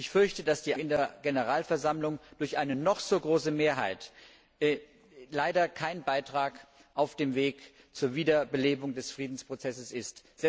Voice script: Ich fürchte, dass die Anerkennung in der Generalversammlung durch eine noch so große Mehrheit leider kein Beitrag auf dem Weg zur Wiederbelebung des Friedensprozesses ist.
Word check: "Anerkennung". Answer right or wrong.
wrong